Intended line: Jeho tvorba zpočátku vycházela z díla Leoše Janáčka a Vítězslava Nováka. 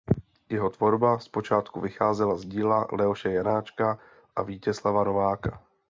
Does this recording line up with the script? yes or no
yes